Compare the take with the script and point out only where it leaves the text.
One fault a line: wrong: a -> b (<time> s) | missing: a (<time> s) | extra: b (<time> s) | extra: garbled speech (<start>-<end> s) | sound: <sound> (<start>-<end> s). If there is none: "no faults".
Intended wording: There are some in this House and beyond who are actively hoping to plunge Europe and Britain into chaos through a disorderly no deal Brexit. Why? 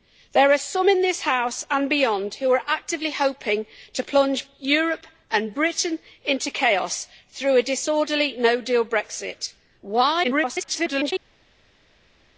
extra: garbled speech (10.2-11.1 s)